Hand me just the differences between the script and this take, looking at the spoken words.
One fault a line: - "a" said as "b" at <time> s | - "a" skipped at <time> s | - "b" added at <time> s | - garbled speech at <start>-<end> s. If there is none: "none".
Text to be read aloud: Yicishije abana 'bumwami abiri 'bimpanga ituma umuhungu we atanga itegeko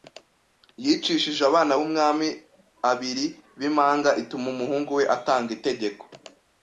none